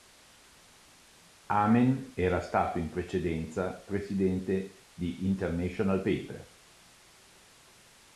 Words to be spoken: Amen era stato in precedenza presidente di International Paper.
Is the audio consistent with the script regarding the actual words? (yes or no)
yes